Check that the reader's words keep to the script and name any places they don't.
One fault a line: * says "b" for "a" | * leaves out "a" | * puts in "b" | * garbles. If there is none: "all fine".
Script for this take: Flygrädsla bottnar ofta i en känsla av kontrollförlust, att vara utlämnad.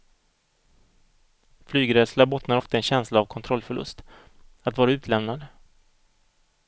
all fine